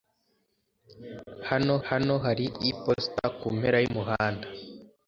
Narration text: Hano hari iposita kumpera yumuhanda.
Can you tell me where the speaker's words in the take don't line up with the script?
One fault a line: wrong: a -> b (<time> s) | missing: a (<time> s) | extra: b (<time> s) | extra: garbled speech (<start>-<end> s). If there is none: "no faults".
extra: hano (1.9 s)